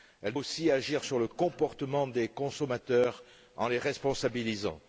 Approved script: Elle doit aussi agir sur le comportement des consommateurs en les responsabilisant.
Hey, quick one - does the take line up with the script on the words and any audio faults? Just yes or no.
no